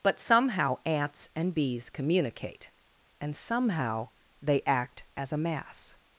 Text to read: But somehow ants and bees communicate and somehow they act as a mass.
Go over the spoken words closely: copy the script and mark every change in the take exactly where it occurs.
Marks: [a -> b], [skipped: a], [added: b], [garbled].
But somehow ants and bees communicate and somehow they act as a mass.